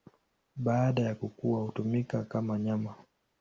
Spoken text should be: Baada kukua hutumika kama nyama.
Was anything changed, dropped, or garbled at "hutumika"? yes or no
no